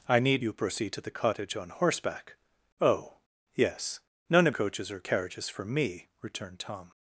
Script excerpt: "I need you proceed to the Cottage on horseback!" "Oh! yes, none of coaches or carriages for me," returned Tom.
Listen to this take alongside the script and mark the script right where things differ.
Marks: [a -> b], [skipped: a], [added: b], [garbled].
"I need you proceed to the Cottage on horseback!" "Oh! yes, none of coaches or carriages for me," returned Tom.